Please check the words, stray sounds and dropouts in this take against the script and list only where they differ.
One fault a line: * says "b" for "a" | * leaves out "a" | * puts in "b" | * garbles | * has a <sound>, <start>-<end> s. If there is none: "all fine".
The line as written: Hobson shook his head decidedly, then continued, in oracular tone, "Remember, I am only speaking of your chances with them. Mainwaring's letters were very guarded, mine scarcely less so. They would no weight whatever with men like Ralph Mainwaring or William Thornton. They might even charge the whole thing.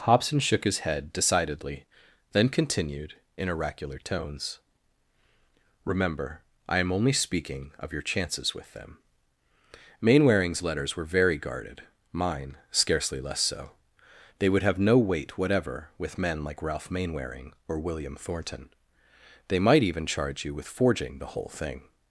* says "tones" for "tone"
* puts in "have"
* puts in "you with forging"